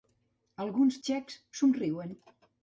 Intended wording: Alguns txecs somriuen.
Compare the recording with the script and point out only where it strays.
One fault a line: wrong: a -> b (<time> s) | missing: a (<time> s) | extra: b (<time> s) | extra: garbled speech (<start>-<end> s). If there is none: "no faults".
no faults